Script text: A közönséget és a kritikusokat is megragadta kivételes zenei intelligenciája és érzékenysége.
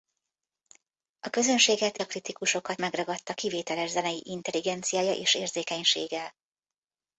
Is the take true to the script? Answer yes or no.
no